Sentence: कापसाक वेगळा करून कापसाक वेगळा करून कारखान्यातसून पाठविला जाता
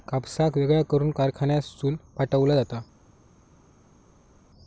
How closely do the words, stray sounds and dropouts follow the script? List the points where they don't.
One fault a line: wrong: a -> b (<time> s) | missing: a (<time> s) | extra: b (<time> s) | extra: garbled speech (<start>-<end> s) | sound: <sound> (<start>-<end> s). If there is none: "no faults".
missing: कापसाक वेगळा करून (1.1 s)